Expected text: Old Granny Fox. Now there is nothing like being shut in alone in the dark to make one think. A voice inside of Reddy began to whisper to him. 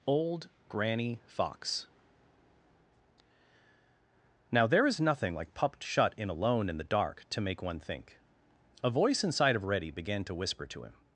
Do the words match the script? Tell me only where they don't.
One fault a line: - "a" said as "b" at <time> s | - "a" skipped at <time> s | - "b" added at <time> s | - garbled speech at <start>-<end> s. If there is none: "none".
- "being" said as "pupped" at 5.5 s